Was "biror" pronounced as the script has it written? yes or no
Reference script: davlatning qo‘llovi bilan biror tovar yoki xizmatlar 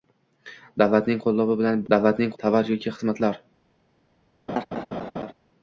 no